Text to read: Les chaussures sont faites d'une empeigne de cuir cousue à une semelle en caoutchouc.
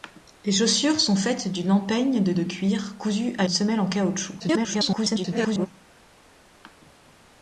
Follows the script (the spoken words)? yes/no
no